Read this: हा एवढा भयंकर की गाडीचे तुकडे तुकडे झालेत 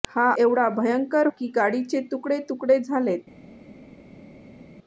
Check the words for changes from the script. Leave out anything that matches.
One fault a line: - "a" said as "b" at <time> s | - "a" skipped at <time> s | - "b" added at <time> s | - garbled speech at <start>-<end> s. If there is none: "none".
none